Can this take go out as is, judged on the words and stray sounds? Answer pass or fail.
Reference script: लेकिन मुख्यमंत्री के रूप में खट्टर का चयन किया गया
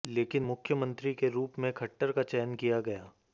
pass